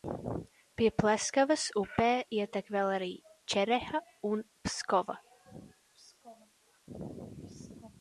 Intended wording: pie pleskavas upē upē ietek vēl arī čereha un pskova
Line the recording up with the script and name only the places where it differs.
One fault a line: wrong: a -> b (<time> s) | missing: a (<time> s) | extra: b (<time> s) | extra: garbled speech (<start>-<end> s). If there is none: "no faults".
missing: upē (2.1 s)